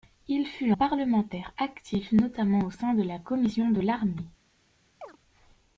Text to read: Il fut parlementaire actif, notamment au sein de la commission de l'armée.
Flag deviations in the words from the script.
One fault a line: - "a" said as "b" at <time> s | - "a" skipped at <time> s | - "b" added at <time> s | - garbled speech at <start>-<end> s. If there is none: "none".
none